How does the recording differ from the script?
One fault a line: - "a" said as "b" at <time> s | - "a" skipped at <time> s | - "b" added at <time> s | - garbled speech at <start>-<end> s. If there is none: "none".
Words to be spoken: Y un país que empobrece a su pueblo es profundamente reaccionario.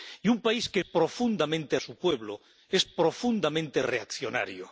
- "empobrece" said as "profundamente" at 0.8 s